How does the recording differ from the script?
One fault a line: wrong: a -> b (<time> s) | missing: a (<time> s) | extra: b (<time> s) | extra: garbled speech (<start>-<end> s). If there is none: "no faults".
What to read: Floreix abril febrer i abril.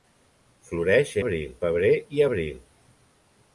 no faults